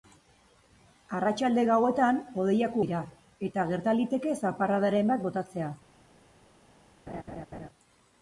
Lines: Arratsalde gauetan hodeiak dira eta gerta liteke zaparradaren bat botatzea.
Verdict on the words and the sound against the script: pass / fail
fail